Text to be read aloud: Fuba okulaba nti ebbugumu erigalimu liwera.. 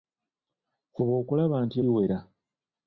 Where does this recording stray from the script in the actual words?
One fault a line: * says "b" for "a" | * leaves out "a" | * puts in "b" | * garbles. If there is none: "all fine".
* leaves out "ebbugumu erigalimu"